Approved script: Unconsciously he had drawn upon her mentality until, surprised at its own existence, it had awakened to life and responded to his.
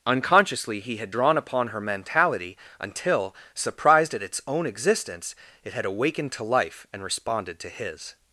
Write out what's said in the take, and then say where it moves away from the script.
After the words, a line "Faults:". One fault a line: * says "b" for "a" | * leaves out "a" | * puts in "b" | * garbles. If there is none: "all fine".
Unconsciously he had drawn upon her mentality until, surprised at its own existence, it had awakened to life and responded to his.
Faults:
all fine